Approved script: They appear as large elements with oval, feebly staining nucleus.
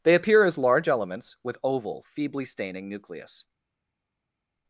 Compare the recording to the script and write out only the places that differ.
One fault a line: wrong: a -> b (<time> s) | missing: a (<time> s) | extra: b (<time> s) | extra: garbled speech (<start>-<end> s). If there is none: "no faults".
no faults